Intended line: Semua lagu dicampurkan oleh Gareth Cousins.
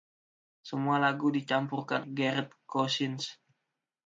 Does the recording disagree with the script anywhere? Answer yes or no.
yes